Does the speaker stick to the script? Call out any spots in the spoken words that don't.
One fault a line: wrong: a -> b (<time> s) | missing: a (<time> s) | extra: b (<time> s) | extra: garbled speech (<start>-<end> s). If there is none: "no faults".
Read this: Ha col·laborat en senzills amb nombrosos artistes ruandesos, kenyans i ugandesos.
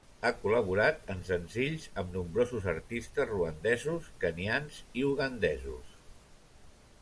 no faults